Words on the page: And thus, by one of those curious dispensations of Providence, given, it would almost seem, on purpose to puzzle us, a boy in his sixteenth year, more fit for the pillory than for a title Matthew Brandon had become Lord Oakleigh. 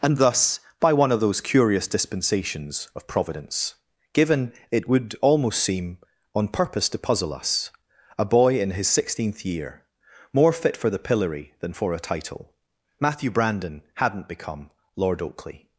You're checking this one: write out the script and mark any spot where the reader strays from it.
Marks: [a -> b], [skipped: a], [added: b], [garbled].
And thus, by one of those curious dispensations of Providence, given, it would almost seem, on purpose to puzzle us, a boy in his sixteenth year, more fit for the pillory than for a title Matthew Brandon [had -> hadn't] become Lord Oakleigh.